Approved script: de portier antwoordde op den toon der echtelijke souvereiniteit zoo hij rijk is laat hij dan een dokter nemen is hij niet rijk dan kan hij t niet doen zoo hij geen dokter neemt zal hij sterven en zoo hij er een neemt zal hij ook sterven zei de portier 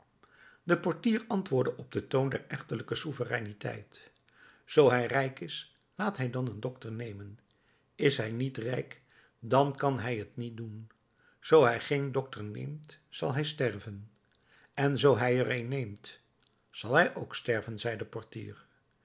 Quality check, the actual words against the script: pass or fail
pass